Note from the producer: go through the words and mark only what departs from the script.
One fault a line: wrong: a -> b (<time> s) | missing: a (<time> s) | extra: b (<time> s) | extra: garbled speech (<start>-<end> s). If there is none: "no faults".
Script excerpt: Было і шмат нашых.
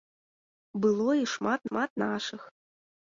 extra: шмат (1.7 s)